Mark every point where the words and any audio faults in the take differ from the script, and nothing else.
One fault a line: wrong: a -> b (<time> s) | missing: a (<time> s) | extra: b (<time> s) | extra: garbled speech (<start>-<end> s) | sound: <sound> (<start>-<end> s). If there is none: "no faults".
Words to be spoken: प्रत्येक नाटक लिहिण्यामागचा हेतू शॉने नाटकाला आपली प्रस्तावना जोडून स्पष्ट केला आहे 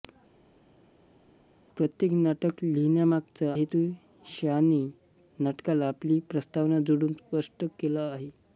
no faults